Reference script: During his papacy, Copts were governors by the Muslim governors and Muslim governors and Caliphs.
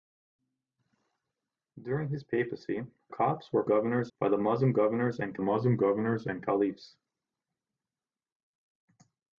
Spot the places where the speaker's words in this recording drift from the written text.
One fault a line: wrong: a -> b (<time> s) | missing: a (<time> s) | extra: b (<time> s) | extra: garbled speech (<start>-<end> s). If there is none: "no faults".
no faults